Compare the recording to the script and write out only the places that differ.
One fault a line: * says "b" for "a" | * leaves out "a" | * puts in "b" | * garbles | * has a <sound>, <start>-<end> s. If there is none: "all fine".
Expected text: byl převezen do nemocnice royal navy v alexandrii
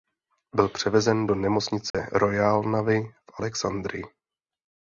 * has a dropout, 1.9-1.9 s